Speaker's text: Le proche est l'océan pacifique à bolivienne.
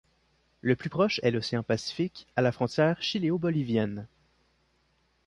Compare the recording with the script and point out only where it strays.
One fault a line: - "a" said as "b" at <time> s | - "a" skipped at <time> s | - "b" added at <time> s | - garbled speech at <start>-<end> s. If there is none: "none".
- "plus" added at 0.8 s
- "la frontière chiléo" added at 2.4 s